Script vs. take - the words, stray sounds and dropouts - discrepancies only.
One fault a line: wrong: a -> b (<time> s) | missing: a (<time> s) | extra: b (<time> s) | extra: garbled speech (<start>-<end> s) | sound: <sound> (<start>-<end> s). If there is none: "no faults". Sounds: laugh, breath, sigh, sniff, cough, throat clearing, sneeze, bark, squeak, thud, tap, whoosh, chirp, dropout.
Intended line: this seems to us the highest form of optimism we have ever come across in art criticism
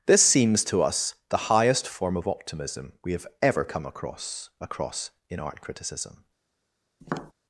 extra: across (4.6 s)
sound: tap (7.0-7.3 s)